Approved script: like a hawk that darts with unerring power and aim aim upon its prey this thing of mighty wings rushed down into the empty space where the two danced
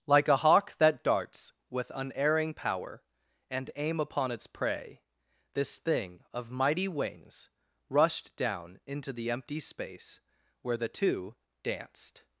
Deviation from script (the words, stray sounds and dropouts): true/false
true